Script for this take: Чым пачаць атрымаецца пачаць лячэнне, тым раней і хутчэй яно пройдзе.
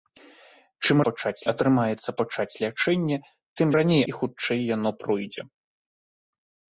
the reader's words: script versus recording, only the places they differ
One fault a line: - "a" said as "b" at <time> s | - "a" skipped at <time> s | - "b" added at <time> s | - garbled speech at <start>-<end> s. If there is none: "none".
none